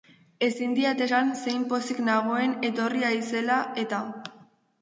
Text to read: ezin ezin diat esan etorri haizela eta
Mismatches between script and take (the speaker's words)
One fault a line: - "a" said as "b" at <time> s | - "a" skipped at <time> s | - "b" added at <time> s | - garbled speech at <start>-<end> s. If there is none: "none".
- "ezin" skipped at 0.7 s
- "zein pozik nagoen" added at 1.4 s